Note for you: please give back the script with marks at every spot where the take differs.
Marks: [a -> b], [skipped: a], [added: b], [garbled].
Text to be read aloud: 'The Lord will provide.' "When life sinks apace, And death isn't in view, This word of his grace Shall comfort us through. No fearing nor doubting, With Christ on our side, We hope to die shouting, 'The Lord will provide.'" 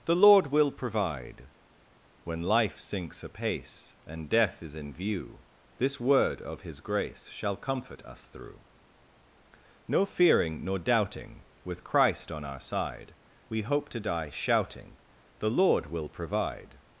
'The Lord will provide.' "When life sinks apace, And death [isn't -> is] in view, This word of his grace Shall comfort us through. No fearing nor doubting, With Christ on our side, We hope to die shouting, 'The Lord will provide.'"